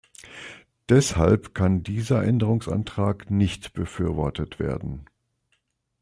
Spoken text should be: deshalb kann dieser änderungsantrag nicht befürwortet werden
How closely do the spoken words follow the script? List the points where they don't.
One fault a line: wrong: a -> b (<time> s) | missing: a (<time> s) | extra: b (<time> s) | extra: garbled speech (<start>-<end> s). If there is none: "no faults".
no faults